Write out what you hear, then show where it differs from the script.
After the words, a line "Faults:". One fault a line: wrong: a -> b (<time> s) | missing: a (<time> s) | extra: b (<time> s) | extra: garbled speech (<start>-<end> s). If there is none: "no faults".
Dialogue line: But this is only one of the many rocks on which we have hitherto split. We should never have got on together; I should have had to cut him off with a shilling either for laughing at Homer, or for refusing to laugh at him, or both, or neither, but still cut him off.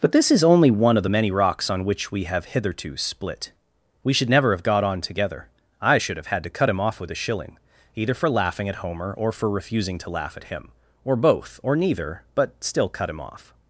But this is only one of the many rocks on which we have hitherto split. We should never have got on together; I should have had to cut him off with a shilling either for laughing at Homer, or for refusing to laugh at him, or both, or neither, but still cut him off.
Faults:
no faults